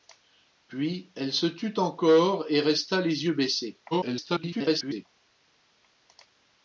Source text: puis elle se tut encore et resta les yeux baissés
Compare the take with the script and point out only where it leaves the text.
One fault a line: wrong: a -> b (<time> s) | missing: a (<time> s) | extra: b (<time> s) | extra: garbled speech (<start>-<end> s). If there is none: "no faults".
extra: garbled speech (3.9-5.1 s)